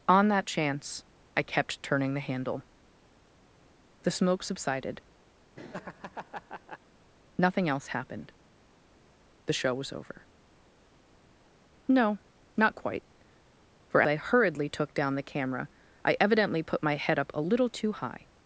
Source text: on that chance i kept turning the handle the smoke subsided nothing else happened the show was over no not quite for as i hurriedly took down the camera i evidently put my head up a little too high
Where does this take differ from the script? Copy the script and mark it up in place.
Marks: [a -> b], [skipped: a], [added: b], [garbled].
on that chance i kept turning the handle the smoke subsided nothing else happened the show was over no not quite for [skipped: as] i hurriedly took down the camera i evidently put my head up a little too high